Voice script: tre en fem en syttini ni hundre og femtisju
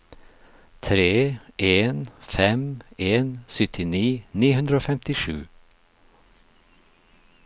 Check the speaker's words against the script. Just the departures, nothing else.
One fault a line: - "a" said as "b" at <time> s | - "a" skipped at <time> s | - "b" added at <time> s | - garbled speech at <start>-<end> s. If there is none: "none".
none